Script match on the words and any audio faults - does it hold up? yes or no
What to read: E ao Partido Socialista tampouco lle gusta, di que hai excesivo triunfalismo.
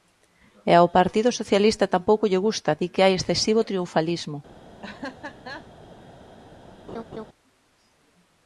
no